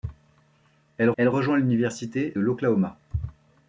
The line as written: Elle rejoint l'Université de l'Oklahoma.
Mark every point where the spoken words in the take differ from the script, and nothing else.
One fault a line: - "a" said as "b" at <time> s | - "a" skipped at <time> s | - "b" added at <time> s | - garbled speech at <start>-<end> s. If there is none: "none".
- "elle" added at 1.2 s
- "de" skipped at 2.3 s